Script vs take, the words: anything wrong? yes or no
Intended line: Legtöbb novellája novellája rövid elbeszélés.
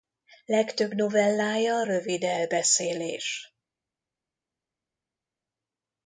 yes